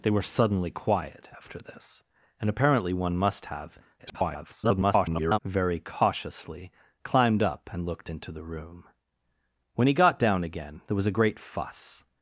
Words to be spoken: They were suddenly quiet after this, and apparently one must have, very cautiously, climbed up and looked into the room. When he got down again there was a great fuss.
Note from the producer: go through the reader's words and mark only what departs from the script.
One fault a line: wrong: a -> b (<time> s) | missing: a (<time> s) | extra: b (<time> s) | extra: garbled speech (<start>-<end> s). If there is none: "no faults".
extra: garbled speech (4.0-5.4 s)